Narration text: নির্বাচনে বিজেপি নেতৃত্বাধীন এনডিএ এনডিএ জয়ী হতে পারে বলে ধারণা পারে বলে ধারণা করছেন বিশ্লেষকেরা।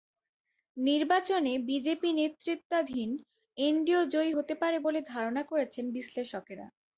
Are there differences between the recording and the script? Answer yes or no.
yes